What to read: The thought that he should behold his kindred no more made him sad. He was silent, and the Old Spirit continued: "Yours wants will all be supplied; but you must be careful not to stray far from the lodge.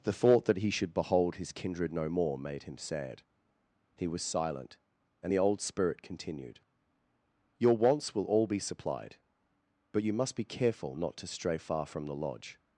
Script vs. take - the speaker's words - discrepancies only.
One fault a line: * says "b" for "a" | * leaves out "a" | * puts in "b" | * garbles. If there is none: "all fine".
* says "Your" for "Yours"